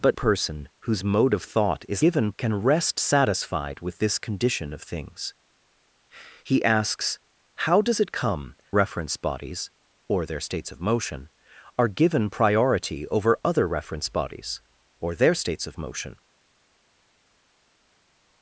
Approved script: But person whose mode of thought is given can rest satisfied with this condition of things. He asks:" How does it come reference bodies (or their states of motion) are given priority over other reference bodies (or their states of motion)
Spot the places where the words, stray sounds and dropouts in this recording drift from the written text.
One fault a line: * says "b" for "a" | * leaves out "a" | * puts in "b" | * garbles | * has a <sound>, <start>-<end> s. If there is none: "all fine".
all fine